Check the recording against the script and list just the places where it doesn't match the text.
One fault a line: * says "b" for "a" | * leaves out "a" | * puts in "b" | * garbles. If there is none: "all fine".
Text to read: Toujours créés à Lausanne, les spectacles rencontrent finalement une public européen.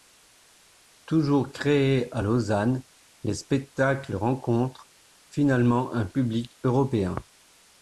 * says "un" for "une"